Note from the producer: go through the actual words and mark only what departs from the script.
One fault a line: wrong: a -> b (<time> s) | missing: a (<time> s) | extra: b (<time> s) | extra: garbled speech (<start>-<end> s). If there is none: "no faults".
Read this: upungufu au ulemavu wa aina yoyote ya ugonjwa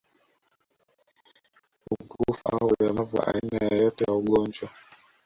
no faults